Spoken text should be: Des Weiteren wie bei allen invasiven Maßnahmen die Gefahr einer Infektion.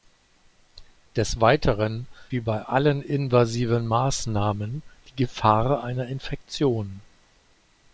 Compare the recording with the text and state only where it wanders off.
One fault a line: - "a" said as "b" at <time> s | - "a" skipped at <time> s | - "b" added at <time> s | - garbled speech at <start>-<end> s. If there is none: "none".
none